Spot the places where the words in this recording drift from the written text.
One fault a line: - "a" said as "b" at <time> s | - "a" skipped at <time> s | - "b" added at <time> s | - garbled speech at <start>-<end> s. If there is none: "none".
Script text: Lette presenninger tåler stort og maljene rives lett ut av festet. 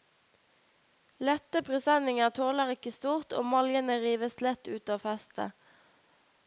- "ikke" added at 2.8 s